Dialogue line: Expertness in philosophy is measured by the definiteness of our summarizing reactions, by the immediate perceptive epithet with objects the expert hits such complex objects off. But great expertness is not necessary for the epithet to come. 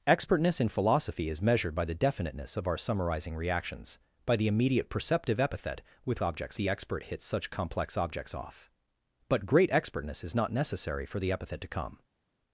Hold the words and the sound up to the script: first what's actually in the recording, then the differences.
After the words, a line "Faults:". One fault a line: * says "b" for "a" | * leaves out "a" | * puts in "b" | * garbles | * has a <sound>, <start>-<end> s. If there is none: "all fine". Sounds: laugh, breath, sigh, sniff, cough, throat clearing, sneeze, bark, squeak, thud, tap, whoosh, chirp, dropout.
Expertness in philosophy is measured by the definiteness of our summarizing reactions, by the immediate perceptive epithet with objects the expert hits such complex objects off. But great expertness is not necessary for the epithet to come.
Faults:
all fine